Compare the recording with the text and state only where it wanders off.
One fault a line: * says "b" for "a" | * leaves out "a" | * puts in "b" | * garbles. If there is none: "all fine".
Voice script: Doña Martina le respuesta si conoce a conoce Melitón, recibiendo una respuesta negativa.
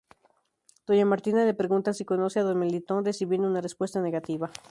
* says "pregunta" for "respuesta"
* says "don" for "conoce"